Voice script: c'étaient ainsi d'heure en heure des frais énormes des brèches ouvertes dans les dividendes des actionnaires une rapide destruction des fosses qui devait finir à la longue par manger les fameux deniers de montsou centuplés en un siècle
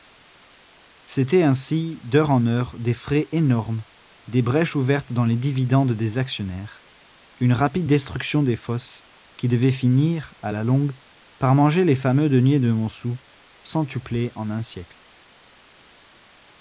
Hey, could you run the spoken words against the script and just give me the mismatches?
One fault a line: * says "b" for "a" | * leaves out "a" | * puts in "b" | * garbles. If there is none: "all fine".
all fine